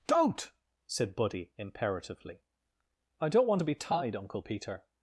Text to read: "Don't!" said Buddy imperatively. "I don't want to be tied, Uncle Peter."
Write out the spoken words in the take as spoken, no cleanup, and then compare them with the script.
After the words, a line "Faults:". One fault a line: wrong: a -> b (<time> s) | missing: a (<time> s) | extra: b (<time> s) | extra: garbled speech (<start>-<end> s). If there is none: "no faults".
"Don't!" said Buddy imperatively. "I don't want to be tied, Uncle Peter."
Faults:
no faults